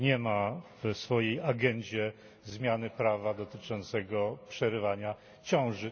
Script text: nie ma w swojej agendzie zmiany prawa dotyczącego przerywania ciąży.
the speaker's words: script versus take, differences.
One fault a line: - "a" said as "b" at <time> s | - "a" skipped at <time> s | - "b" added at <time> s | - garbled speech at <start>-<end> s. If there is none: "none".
none